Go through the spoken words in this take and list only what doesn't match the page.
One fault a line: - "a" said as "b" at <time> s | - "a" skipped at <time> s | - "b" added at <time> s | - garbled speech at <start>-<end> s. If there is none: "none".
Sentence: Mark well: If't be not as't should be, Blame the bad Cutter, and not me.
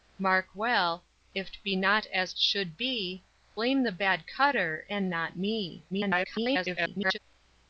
- garbled speech at 5.9-7.2 s